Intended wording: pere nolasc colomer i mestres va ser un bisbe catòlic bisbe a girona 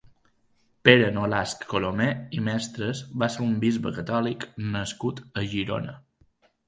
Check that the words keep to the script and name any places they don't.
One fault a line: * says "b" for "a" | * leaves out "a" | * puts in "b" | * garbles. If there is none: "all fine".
* says "nascut" for "bisbe"